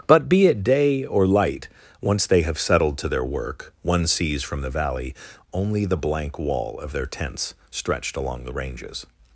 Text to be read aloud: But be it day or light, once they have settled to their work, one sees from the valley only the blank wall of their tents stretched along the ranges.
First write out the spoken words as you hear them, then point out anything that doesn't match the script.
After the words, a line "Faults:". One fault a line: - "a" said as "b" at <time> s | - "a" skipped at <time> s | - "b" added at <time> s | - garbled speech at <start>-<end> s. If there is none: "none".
But be it day or light, once they have settled to their work, one sees from the valley only the blank wall of their tents stretched along the ranges.
Faults:
none